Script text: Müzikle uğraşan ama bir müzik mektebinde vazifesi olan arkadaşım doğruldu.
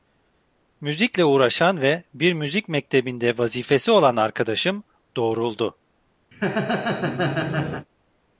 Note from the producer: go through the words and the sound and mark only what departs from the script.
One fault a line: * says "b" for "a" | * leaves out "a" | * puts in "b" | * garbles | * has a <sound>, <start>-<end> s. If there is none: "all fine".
* says "ve" for "ama"
* has a laugh, 6.3-7.9 s